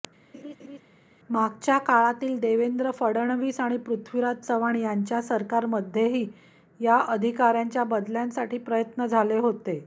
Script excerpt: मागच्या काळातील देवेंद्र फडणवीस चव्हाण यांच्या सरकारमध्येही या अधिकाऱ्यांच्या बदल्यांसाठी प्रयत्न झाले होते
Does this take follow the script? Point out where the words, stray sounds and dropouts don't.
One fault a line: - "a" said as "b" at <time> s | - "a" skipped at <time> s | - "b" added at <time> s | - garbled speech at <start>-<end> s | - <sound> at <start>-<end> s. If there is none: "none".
- laugh at 0.3-0.8 s
- "आणि पृथ्वीराज" added at 3.6 s